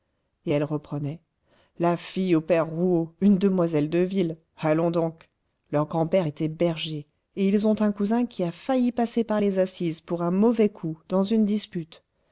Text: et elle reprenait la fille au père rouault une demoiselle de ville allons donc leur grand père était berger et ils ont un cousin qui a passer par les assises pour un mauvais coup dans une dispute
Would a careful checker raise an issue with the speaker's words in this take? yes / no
yes